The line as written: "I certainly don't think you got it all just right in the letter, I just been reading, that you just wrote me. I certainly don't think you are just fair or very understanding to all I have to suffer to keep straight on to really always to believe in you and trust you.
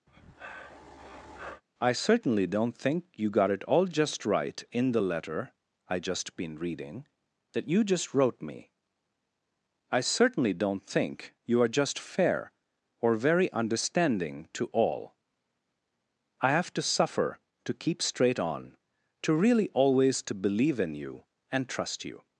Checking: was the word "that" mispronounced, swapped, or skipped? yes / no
no